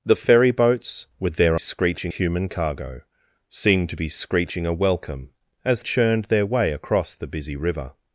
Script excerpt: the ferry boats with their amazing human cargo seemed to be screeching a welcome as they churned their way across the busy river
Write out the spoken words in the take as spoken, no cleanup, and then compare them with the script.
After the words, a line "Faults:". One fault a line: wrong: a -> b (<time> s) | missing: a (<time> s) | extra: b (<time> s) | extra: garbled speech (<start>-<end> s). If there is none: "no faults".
the ferry boats with their screeching human cargo seemed to be screeching a welcome as churned their way across the busy river
Faults:
wrong: amazing -> screeching (1.6 s)
missing: they (5.8 s)